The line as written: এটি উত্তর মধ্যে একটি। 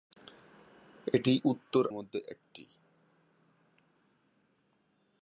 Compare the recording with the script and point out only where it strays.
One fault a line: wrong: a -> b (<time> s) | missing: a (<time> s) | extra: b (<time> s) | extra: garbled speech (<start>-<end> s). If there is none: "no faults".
no faults